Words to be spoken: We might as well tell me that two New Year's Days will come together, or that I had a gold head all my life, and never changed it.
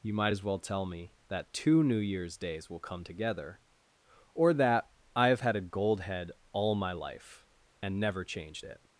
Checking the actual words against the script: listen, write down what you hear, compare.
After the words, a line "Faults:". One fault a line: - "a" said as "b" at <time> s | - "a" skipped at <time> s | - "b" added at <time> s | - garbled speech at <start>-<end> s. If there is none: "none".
You might as well tell me that two New Year's Days will come together, or that I have had a gold head all my life, and never changed it.
Faults:
- "We" said as "You" at 0.0 s
- "have" added at 5.3 s